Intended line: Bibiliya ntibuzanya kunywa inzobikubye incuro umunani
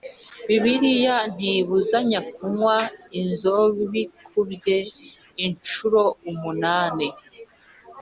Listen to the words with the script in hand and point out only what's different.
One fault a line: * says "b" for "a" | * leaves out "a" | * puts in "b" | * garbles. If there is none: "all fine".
all fine